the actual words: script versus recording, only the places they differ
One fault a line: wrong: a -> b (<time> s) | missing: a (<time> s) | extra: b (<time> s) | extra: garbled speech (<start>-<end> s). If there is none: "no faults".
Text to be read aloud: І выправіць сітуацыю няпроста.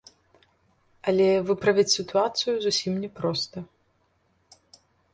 wrong: І -> Але (1.1 s)
extra: зусім (2.7 s)